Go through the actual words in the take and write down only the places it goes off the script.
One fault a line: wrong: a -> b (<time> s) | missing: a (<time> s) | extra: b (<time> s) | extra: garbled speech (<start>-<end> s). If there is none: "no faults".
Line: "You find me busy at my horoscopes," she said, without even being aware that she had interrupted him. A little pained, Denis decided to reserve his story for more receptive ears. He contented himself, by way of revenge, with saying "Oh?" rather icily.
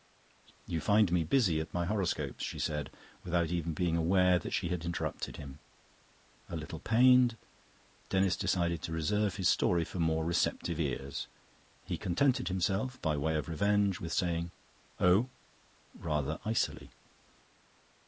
no faults